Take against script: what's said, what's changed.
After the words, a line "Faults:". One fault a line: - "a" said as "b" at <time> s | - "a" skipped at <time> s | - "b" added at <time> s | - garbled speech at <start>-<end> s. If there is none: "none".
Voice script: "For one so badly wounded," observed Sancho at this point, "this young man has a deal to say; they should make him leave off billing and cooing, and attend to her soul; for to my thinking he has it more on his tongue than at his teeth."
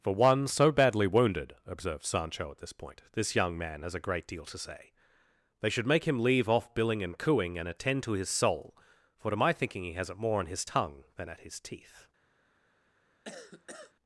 "For one so badly wounded," observed Sancho at this point, "this young man has a great deal to say; they should make him leave off billing and cooing, and attend to his soul; for to my thinking he has it more on his tongue than at his teeth."
Faults:
- "great" added at 4.0 s
- "her" said as "his" at 8.1 s